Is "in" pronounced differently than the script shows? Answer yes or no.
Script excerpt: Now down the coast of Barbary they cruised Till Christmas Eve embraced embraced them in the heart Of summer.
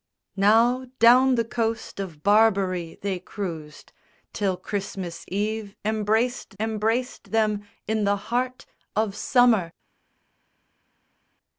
no